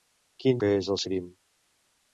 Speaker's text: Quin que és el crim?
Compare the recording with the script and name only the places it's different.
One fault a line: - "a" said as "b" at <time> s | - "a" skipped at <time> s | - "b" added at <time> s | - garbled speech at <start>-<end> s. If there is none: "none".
none